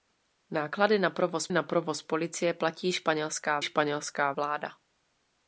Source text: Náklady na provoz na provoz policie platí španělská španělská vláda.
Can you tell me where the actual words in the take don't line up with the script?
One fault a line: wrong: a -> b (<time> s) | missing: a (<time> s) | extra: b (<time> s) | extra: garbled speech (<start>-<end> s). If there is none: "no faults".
no faults